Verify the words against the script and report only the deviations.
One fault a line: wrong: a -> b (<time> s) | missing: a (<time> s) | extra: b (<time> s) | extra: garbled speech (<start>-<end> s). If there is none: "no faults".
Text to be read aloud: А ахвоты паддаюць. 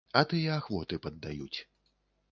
extra: тыя (0.3 s)